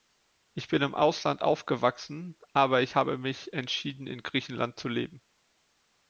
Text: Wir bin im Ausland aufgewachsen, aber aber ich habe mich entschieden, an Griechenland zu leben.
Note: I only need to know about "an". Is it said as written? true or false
false